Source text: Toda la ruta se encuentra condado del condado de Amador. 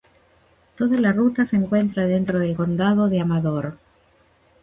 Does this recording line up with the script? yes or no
no